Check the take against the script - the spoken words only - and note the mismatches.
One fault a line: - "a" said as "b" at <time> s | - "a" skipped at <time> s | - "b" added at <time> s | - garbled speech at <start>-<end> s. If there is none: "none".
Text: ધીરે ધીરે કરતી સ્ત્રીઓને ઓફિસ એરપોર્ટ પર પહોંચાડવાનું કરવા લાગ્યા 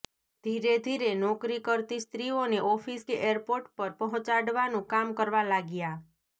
- "નોકરી" added at 1.2 s
- "કે" added at 3.0 s
- "કામ" added at 4.9 s